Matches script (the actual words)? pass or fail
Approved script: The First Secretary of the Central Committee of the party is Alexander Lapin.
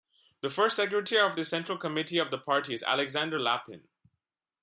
pass